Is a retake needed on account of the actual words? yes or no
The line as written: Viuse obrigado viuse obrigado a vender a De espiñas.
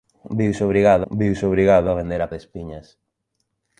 no